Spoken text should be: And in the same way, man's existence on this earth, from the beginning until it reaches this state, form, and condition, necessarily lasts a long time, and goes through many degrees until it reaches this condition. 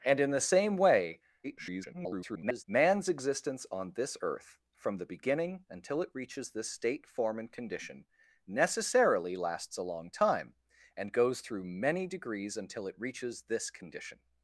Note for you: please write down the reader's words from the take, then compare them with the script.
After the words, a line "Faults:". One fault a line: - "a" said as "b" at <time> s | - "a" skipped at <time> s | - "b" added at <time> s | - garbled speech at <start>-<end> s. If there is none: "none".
And in the same way, [garbled] man's existence on this earth, from the beginning until it reaches this state, form, and condition, necessarily lasts a long time, and goes through many degrees until it reaches this condition.
Faults:
- garbled speech at 1.4-2.6 s